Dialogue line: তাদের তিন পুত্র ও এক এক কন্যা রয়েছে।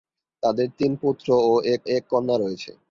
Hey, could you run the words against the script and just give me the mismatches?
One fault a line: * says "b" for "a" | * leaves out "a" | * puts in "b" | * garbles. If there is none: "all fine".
all fine